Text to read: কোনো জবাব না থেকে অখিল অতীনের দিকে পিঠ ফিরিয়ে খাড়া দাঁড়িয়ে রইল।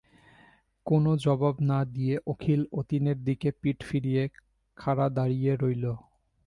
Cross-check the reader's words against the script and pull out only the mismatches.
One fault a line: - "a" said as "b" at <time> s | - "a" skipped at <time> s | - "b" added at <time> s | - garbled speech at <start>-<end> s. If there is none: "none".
- "থেকে" said as "দিয়ে" at 1.9 s